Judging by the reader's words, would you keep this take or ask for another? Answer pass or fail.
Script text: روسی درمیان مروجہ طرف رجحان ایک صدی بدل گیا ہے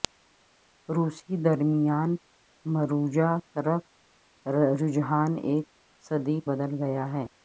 pass